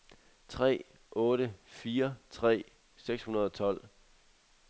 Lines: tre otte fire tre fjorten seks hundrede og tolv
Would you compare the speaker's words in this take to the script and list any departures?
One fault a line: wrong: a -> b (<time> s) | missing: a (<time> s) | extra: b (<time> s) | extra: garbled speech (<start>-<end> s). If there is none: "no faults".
missing: fjorten (2.6 s)